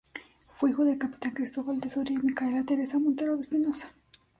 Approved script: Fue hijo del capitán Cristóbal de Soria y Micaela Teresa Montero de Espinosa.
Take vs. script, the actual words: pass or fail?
pass